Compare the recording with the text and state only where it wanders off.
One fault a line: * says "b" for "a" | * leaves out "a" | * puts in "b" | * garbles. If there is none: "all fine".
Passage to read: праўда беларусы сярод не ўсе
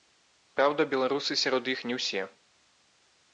* puts in "іх"